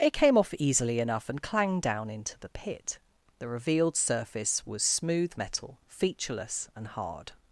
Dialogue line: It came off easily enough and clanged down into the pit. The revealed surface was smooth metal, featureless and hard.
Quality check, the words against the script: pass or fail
pass